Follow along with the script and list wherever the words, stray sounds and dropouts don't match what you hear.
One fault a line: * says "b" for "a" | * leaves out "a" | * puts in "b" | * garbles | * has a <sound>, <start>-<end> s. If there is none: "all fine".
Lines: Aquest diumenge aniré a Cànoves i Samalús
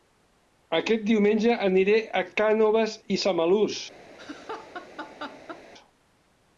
* has a laugh, 4.2-5.6 s